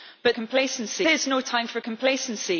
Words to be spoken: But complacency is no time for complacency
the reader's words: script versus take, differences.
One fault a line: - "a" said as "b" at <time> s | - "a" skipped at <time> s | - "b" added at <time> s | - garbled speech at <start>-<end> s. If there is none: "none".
none